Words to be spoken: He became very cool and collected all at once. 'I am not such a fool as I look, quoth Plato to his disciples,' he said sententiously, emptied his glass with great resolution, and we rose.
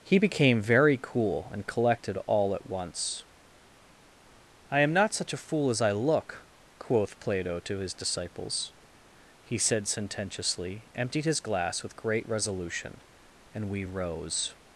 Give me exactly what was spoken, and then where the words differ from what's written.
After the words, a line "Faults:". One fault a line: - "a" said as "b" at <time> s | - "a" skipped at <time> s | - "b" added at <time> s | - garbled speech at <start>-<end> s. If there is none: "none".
He became very cool and collected all at once. 'I am not such a fool as I look, quoth Plato to his disciples,' he said sententiously, emptied his glass with great resolution, and we rose.
Faults:
none